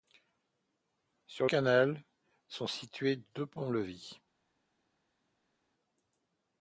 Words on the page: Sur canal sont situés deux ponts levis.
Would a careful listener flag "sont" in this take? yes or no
no